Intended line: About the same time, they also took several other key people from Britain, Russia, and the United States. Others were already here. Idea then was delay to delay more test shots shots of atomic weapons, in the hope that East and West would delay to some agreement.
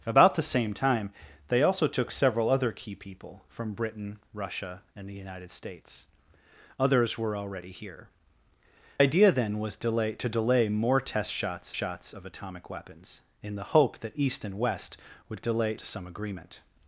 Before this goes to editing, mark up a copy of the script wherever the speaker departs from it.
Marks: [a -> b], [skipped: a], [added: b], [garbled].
About the same time, they also took several other key people from Britain, Russia, and the United States. Others were already here. Idea then was delay to delay more test shots shots of atomic weapons, in the hope that East and West would delay to some agreement.